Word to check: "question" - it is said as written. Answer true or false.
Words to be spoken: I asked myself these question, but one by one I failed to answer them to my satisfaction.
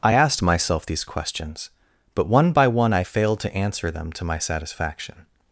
false